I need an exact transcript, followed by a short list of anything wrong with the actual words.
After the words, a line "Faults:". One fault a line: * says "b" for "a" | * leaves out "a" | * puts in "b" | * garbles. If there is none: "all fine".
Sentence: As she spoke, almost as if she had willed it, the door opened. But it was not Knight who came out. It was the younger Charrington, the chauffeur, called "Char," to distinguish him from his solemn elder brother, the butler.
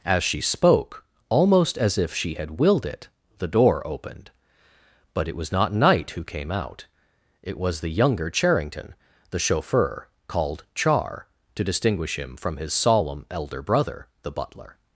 As she spoke, almost as if she had willed it, the door opened. But it was not Knight who came out. It was the younger Charrington, the chauffeur, called "Char," to distinguish him from his solemn elder brother, the butler.
Faults:
all fine